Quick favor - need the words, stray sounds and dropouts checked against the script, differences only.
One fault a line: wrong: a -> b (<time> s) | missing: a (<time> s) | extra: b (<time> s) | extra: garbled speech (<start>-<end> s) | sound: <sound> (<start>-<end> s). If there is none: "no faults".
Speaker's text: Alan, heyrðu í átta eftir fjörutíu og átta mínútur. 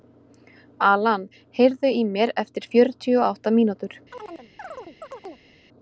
wrong: átta -> mér (2.2 s)
sound: chirp (4.1-5.5 s)